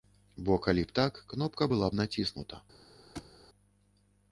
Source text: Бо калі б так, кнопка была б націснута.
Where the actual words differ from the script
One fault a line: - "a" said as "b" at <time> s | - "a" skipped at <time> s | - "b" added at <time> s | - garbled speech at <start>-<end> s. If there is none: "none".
none